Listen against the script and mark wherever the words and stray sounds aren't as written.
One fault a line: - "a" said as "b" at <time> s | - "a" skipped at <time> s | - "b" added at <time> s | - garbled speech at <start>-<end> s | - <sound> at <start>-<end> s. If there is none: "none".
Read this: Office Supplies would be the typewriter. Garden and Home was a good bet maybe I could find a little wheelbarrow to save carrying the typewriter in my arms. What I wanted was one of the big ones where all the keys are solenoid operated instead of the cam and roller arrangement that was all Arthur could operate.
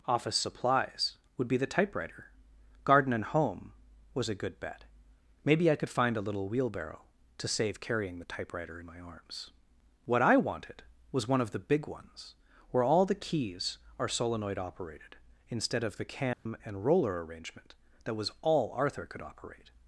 - dropout at 16.3-16.5 s